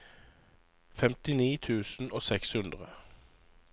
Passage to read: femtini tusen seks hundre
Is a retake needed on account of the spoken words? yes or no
yes